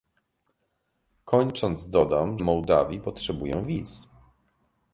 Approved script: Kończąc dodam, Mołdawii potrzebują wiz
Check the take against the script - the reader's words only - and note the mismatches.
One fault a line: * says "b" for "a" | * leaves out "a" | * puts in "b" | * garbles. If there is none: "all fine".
all fine